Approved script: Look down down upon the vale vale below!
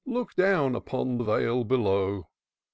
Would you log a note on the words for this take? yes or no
yes